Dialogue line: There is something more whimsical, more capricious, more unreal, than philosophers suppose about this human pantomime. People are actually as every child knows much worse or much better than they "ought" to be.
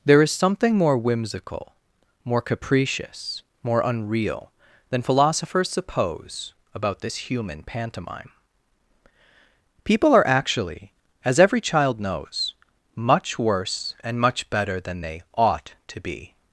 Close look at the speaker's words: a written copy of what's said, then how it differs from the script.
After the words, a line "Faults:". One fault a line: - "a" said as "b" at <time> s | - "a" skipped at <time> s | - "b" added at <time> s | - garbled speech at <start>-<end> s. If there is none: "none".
There is something more whimsical, more capricious, more unreal, than philosophers suppose about this human pantomime. People are actually as every child knows much worse and much better than they "ought" to be.
Faults:
- "or" said as "and" at 14.0 s